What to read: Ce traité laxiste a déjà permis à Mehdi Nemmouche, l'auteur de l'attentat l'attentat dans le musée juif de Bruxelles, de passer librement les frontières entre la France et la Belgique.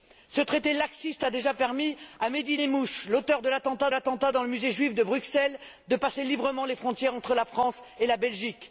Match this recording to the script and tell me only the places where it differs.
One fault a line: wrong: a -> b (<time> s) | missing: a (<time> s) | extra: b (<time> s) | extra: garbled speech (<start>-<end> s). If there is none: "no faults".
no faults